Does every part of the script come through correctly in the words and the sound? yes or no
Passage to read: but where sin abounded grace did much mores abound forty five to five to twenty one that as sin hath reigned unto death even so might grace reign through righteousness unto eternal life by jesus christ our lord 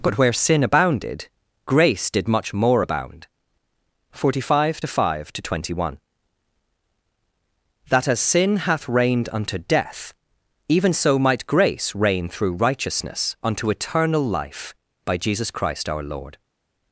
no